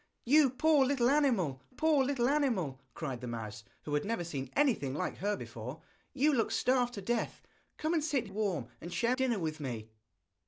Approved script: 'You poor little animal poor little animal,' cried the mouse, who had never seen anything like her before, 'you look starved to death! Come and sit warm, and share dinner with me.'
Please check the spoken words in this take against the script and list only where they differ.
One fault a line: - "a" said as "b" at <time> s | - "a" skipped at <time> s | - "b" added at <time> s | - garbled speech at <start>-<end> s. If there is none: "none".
none